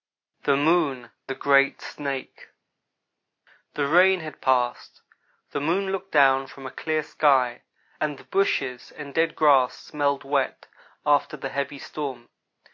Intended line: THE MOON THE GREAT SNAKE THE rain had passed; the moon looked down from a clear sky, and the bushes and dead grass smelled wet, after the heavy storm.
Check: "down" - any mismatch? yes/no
no